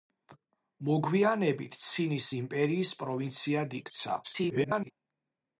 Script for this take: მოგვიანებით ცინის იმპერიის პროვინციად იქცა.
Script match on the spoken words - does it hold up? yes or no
no